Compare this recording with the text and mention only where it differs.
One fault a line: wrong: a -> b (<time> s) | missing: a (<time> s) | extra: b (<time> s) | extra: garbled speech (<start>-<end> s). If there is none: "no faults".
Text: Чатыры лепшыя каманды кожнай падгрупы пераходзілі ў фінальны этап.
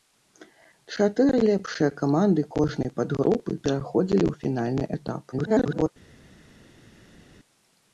extra: garbled speech (5.3-5.9 s)